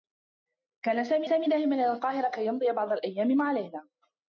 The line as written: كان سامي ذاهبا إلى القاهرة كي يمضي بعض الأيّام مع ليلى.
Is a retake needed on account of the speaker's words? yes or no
yes